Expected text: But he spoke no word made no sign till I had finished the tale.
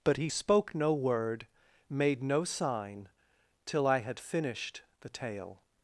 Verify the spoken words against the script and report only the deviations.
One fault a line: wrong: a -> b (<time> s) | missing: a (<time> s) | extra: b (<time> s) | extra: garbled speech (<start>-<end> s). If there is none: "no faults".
no faults